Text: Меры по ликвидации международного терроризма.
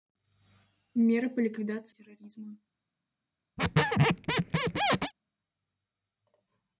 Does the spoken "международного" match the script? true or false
false